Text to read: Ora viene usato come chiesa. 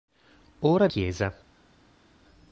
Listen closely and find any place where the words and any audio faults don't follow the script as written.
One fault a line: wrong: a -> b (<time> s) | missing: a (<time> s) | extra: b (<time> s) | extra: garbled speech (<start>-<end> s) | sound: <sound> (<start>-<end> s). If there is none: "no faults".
missing: viene usato come (0.9 s)